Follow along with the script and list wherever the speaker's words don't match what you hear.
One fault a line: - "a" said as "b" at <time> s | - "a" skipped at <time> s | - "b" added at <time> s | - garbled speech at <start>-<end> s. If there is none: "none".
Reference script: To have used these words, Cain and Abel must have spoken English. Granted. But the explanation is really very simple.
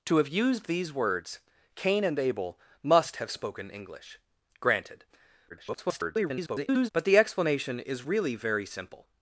- garbled speech at 5.5-6.9 s